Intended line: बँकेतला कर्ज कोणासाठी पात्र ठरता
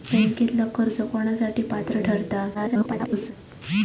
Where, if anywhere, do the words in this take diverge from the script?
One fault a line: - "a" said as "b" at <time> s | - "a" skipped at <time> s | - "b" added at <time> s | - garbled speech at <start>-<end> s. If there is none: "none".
- garbled speech at 2.5-3.3 s